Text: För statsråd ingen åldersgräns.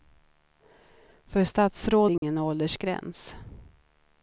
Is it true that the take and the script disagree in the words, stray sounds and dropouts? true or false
true